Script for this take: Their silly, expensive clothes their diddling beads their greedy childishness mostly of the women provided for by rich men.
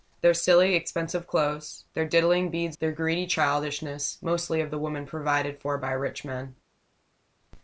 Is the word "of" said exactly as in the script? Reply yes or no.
yes